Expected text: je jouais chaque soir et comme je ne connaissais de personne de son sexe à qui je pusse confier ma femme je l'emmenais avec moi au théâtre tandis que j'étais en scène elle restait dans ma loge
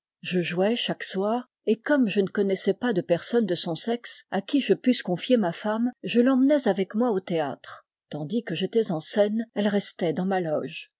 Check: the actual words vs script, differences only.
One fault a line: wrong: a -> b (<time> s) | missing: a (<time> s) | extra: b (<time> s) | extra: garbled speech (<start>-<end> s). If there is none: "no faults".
extra: pas (2.7 s)